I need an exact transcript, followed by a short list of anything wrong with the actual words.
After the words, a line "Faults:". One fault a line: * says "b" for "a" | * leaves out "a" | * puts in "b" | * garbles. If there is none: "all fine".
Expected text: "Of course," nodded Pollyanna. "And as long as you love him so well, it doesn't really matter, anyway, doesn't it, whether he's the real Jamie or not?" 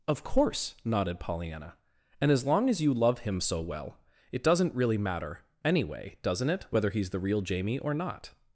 "Of course," nodded Pollyanna. "And as long as you love him so well, it doesn't really matter, anyway, doesn't it, whether he's the real Jamie or not?"
Faults:
all fine